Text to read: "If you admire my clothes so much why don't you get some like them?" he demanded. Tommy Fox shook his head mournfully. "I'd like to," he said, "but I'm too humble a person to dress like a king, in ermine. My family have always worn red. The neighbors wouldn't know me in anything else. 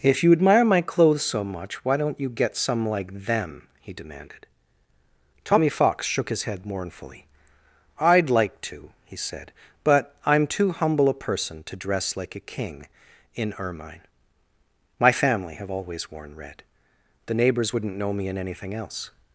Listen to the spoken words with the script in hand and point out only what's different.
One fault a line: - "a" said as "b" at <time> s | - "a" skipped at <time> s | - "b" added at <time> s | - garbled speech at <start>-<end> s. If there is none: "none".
none